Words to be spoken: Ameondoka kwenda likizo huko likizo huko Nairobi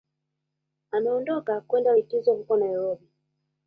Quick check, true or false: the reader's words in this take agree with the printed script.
false